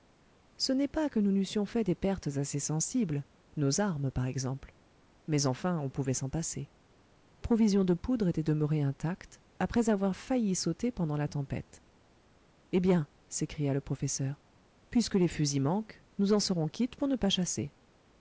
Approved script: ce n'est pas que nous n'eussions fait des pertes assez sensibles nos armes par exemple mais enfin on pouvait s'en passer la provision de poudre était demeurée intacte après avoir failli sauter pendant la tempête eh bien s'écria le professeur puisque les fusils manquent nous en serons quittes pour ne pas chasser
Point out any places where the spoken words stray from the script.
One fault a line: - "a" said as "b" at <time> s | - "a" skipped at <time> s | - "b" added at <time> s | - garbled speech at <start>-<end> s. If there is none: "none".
- "la" skipped at 6.7 s